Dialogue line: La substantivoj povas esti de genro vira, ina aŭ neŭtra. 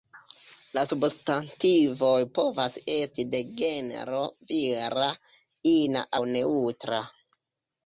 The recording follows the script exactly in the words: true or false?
true